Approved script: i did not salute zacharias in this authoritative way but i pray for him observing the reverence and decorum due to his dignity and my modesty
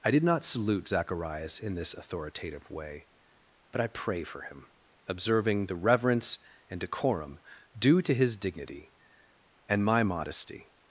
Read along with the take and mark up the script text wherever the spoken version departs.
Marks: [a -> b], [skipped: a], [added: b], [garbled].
i did not salute zacharias in this authoritative way but i pray for him observing the reverence and decorum due to his dignity and my modesty